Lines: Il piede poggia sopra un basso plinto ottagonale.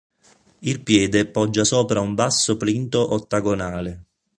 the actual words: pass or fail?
pass